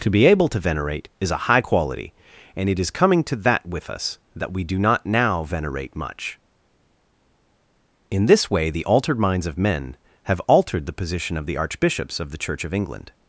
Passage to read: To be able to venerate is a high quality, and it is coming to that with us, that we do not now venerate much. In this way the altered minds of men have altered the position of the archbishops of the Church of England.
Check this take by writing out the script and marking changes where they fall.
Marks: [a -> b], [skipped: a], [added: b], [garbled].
To be able to venerate is a high quality, and it is coming to that with us, that we do not now venerate much. In this way the altered minds of men have altered the position of the archbishops of the Church of England.